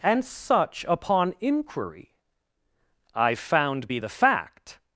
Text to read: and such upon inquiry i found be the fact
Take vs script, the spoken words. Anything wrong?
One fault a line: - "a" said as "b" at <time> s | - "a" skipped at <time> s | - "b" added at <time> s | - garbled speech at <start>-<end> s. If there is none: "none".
none